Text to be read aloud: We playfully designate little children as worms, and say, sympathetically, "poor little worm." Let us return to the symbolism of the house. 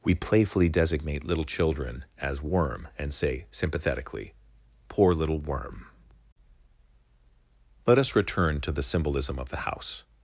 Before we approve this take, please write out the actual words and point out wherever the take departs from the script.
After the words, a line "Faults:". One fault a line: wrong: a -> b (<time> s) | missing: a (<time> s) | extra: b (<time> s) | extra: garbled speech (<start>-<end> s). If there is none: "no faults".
We playfully designate little children as worm, and say, sympathetically, "poor little worm." Let us return to the symbolism of the house.
Faults:
wrong: worms -> worm (2.4 s)